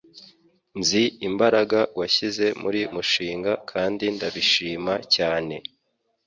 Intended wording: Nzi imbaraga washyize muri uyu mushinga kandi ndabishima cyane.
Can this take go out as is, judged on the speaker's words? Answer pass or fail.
fail